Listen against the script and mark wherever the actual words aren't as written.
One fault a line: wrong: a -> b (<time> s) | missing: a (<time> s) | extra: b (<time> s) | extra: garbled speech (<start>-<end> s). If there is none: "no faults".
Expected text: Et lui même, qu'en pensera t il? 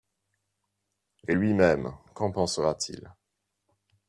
no faults